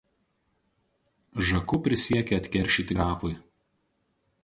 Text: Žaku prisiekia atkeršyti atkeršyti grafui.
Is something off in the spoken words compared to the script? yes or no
yes